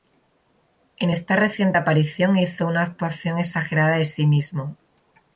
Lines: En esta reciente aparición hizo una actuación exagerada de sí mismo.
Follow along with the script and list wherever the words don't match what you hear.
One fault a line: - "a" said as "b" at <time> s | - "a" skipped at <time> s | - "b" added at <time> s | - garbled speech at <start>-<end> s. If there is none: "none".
none